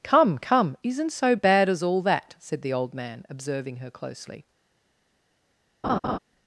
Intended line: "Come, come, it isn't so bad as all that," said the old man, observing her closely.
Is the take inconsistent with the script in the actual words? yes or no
yes